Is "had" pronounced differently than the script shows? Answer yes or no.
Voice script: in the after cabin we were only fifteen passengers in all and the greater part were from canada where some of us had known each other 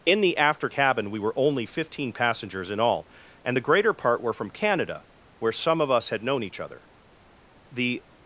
no